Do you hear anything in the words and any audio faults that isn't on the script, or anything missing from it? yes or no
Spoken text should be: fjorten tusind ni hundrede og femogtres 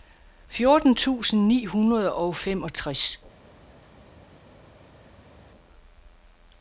no